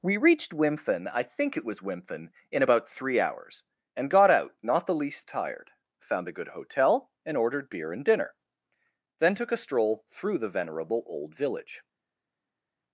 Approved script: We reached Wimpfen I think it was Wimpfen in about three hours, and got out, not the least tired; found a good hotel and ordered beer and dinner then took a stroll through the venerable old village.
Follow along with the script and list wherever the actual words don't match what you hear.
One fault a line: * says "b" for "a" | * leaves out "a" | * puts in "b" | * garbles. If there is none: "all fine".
all fine